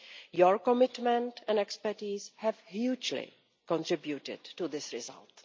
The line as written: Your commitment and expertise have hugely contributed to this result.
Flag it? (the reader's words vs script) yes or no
no